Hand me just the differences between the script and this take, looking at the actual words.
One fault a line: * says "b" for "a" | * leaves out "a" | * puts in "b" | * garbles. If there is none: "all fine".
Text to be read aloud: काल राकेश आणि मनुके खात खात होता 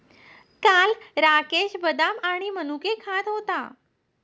* puts in "बदाम"
* leaves out "खात"